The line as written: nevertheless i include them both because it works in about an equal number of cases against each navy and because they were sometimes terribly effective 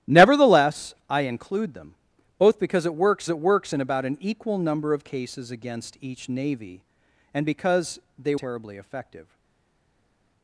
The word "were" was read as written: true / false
false